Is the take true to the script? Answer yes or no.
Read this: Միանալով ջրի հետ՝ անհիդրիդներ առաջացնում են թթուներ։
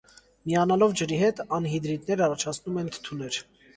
yes